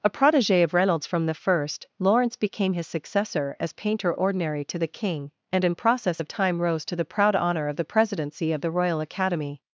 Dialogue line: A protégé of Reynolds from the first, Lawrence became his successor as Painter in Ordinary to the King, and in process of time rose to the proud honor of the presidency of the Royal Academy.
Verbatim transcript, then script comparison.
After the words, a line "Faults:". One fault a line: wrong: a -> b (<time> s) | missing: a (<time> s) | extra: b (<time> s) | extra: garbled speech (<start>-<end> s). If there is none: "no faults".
A protégé of Reynolds from the first, Lawrence became his successor as Painter Ordinary to the King, and in process of time rose to the proud honor of the presidency of the Royal Academy.
Faults:
missing: in (4.1 s)